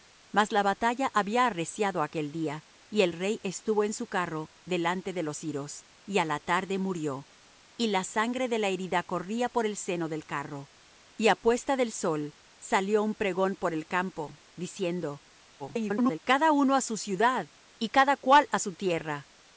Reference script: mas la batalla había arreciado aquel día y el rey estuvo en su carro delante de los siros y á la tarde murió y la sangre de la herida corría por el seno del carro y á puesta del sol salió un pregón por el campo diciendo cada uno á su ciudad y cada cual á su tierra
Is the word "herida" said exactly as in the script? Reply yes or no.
yes